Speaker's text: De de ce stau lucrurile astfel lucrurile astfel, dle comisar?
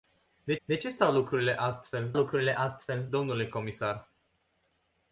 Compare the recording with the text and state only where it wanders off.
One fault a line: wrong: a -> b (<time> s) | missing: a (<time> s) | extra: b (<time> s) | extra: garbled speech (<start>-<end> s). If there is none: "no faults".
no faults